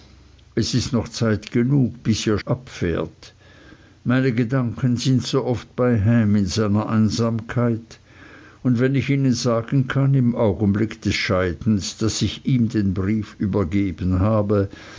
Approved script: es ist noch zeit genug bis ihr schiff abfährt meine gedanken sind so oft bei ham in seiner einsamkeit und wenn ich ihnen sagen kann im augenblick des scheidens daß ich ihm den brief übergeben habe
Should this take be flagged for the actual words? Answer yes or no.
yes